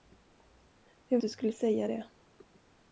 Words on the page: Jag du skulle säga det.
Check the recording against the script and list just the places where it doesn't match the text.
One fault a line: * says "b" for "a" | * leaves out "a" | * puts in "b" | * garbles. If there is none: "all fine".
all fine